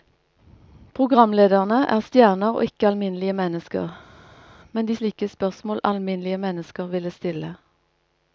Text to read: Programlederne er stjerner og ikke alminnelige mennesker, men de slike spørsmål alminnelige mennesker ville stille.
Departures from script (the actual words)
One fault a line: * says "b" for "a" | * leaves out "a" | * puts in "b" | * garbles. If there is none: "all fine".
all fine